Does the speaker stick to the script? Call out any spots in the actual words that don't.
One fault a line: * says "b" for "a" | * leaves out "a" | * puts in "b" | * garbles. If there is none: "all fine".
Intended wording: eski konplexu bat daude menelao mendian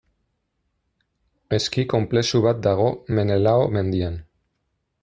* says "dago" for "daude"